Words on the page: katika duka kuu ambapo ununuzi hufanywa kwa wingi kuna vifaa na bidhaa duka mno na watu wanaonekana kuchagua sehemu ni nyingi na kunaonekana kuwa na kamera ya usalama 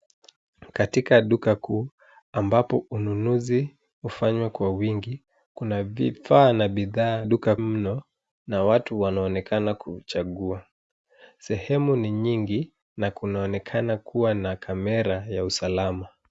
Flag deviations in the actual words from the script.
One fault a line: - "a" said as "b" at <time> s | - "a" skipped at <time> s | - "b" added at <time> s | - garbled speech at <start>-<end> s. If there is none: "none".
none